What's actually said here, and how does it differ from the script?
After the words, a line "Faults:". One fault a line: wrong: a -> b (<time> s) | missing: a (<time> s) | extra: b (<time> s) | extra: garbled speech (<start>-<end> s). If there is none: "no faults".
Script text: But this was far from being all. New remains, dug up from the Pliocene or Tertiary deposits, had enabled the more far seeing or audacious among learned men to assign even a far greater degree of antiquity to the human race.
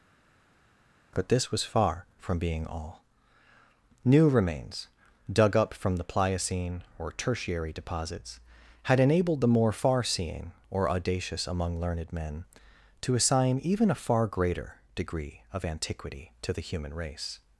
But this was far from being all. New remains, dug up from the Pliocene or Tertiary deposits, had enabled the more far seeing or audacious among learned men to assign even a far greater degree of antiquity to the human race.
Faults:
no faults